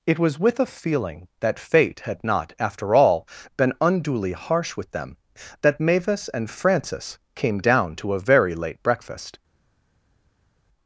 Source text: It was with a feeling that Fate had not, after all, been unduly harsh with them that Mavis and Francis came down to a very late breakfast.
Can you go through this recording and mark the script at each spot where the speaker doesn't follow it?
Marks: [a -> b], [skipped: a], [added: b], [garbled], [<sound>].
It was with a feeling that Fate had not, after all, been unduly harsh with them that Mavis and Francis came down to a very late breakfast.